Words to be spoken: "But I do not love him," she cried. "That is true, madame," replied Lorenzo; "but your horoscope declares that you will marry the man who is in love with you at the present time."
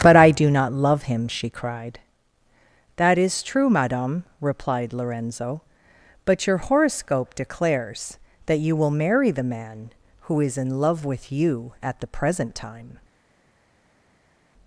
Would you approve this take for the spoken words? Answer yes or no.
yes